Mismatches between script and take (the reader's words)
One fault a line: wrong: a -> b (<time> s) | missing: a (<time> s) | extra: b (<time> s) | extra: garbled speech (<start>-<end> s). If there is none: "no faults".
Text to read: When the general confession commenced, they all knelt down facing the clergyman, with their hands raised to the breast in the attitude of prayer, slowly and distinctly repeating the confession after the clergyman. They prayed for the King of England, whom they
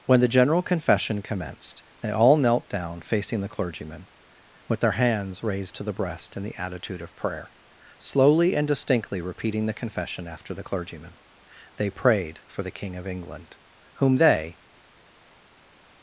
no faults